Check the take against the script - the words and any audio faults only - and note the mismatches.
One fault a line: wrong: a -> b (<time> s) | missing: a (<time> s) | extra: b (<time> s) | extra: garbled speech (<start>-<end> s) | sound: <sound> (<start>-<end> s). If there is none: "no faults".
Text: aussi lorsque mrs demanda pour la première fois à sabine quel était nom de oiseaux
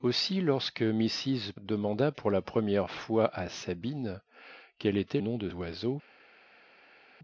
no faults